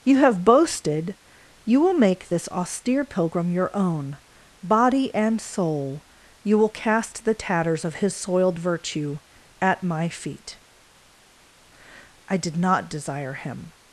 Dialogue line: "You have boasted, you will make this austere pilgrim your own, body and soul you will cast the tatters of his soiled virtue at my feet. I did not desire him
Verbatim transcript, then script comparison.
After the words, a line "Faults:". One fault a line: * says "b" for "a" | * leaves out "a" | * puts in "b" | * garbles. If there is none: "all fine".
"You have boasted, you will make this austere pilgrim your own, body and soul you will cast the tatters of his soiled virtue at my feet. I did not desire him
Faults:
all fine